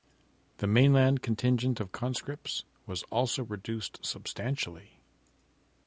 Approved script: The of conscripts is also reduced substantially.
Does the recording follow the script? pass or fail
fail